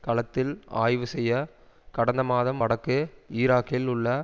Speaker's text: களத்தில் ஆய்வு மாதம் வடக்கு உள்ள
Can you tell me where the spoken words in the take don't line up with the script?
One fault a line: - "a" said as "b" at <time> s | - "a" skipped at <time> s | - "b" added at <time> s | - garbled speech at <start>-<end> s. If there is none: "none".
- "செய்ய கடந்த" added at 1.1 s
- "ஈராக்கில்" added at 3.3 s